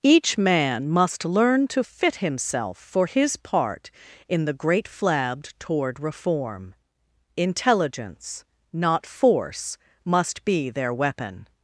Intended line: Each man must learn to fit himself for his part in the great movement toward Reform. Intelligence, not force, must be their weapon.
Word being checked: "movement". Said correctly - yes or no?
no